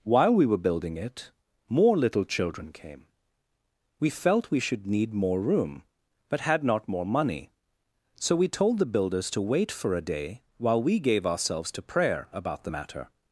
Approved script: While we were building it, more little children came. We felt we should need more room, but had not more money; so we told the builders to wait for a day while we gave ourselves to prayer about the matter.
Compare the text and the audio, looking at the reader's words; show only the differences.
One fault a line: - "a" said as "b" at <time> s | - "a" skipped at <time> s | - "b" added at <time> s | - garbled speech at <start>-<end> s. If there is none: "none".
none